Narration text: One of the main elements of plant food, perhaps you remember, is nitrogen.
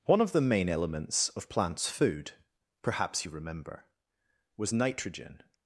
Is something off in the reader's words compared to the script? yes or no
yes